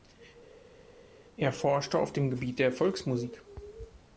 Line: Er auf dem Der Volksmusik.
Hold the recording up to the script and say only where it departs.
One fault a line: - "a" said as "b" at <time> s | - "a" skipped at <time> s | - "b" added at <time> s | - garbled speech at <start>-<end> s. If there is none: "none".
- "forschte" added at 1.5 s
- "Gebiet" added at 2.3 s